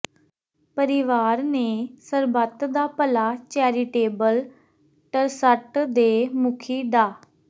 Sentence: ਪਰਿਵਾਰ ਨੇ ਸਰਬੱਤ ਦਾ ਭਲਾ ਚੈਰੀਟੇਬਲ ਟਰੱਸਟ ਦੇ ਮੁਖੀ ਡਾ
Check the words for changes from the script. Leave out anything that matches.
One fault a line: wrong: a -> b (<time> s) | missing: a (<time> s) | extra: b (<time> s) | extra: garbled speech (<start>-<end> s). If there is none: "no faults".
no faults